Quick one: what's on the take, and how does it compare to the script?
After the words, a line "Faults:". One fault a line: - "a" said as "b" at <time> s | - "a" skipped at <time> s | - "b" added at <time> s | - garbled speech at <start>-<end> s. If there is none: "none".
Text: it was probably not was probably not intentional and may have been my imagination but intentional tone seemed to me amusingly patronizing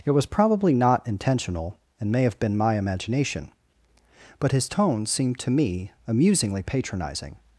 it was probably not intentional and may have been my imagination but his tone seemed to me amusingly patronizing
Faults:
- "was probably not" skipped at 1.1 s
- "intentional" said as "his" at 4.5 s